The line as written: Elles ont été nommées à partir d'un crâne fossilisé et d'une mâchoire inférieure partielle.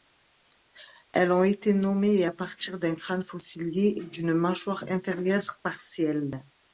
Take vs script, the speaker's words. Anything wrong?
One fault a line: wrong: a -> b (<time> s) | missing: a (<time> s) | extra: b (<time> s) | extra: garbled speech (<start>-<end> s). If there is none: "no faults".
no faults